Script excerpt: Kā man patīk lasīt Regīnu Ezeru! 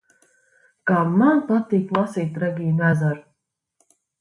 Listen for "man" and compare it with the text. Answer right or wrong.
right